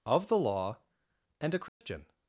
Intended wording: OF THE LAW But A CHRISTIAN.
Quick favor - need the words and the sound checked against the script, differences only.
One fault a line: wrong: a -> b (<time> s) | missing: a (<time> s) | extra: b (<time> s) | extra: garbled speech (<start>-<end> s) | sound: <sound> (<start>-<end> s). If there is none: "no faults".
wrong: But -> AND (1.4 s)
sound: dropout (1.7-1.8 s)